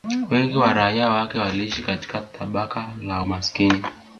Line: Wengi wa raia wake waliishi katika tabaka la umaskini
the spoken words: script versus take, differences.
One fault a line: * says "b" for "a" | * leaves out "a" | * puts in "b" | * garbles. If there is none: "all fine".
all fine